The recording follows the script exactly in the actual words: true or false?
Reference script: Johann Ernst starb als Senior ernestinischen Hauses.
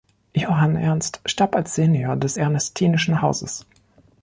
false